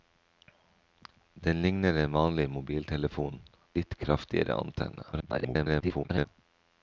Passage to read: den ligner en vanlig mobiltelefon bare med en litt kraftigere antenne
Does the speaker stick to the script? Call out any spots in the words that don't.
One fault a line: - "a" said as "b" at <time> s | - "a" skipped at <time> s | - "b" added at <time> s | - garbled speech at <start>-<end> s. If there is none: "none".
- "bare med en" skipped at 3.4 s
- garbled speech at 5.1-6.3 s